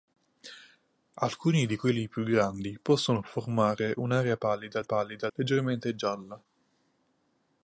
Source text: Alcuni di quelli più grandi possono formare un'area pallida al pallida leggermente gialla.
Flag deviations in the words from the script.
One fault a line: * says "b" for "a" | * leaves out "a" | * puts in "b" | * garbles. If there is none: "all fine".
all fine